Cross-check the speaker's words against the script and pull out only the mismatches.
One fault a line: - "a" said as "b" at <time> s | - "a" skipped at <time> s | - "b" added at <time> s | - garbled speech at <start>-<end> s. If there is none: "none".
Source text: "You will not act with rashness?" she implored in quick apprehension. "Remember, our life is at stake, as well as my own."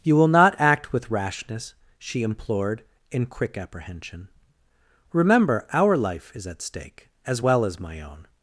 none